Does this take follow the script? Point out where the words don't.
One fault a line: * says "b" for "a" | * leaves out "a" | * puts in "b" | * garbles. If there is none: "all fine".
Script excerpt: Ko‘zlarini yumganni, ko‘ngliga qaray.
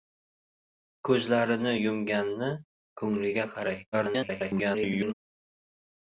* garbles